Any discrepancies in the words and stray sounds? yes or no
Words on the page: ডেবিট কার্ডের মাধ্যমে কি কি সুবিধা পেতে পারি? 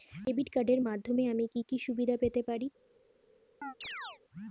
yes